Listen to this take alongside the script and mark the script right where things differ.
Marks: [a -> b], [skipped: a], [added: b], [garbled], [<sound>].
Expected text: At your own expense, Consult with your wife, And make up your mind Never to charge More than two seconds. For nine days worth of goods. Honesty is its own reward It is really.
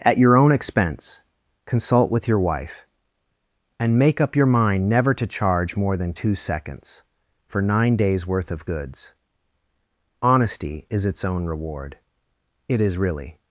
At your own expense, Consult with your wife, And make up your mind Never to charge More than two seconds. For nine days worth of goods. Honesty is its own reward It is really.